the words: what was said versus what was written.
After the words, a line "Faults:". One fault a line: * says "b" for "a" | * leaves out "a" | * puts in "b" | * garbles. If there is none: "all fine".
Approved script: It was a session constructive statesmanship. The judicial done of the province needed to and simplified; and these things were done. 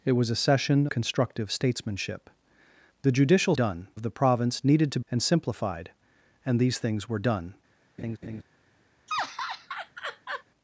It was a session constructive statesmanship. The judicial done of the province needed to and simplified; and these things were done.
Faults:
all fine